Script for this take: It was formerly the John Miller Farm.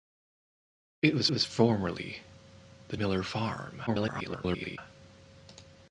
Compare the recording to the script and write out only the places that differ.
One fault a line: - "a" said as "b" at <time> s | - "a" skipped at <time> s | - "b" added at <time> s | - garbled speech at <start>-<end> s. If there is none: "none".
- "was" added at 1.3 s
- "John" skipped at 3.0 s
- garbled speech at 3.9-4.8 s